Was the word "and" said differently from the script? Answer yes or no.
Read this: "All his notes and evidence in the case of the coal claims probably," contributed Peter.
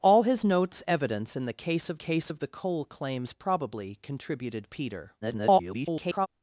yes